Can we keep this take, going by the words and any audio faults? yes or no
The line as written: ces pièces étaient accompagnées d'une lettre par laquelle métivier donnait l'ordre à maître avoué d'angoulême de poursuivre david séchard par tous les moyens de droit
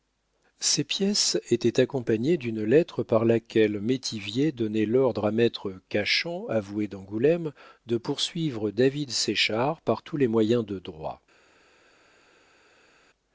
no